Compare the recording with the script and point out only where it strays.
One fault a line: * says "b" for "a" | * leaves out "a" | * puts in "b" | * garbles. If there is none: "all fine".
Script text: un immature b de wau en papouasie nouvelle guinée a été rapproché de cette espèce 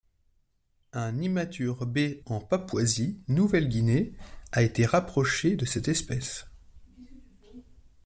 * leaves out "de wau"